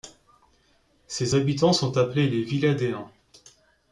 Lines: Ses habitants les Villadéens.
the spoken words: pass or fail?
fail